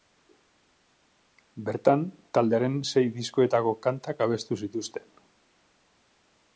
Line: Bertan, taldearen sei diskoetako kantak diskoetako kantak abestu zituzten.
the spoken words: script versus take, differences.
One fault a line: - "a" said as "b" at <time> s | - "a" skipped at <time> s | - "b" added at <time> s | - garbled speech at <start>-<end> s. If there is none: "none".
- "diskoetako kantak" skipped at 4.3 s